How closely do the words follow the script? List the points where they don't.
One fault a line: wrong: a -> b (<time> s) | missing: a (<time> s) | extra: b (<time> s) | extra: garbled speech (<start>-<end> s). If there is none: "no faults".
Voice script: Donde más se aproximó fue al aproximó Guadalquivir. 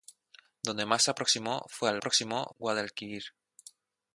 no faults